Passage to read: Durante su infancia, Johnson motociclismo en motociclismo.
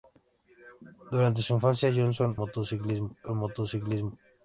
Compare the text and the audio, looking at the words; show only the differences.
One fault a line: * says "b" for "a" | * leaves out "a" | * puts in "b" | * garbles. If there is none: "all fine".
all fine